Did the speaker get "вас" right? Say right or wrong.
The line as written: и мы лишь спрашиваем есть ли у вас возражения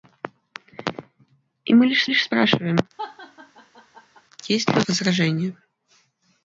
wrong